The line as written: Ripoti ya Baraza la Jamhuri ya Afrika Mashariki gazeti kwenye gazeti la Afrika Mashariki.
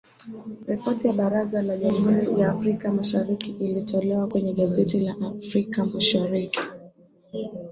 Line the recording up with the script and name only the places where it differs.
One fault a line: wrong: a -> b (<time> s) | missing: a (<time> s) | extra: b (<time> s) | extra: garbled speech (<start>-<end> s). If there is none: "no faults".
wrong: gazeti -> ilitolewa (3.5 s)